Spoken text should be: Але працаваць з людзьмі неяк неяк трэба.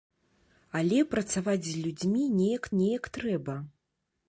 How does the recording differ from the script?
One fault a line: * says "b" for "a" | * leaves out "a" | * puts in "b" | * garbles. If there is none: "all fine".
all fine